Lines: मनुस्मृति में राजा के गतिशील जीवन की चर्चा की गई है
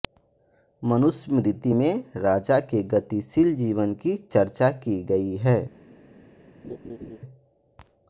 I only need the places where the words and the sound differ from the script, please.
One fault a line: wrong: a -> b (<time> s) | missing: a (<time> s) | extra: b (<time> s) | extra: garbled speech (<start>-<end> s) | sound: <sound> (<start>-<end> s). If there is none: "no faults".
sound: laugh (6.6-7.2 s)